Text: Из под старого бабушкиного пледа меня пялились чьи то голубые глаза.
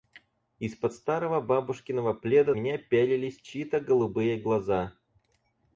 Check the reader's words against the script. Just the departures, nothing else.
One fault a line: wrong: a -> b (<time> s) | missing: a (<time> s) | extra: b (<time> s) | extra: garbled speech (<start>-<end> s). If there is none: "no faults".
no faults